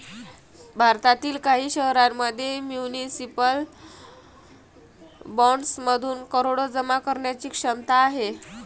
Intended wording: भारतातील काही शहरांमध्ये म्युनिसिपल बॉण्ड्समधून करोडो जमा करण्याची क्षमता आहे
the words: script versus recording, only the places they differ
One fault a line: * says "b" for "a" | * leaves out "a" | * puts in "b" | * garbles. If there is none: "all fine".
all fine